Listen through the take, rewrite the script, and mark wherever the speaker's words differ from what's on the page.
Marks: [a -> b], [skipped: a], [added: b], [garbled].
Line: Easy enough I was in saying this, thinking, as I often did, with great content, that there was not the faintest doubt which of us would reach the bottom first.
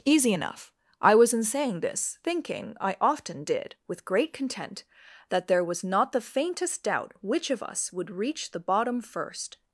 Easy enough I was in saying this, thinking, [skipped: as] I often did, with great content, that there was not the faintest doubt which of us would reach the bottom first.